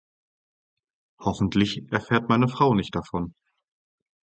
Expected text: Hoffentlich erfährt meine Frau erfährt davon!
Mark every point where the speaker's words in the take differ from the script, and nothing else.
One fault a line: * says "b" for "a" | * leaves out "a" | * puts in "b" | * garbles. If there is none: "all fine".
* says "nicht" for "erfährt"